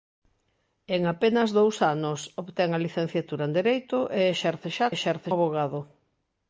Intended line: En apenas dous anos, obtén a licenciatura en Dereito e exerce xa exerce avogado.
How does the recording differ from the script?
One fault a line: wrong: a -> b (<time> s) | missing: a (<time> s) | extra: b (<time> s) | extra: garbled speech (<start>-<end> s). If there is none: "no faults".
no faults